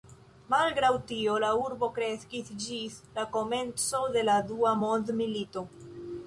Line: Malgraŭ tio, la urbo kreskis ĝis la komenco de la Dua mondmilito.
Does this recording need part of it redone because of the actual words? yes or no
no